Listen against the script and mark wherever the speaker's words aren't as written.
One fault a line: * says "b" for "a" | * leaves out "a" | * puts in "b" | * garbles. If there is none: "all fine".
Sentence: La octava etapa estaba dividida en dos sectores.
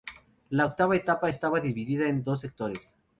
all fine